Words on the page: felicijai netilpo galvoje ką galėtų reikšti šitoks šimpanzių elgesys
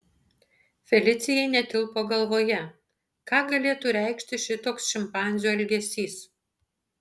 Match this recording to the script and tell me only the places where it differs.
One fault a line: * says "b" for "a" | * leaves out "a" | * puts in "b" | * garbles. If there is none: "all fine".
all fine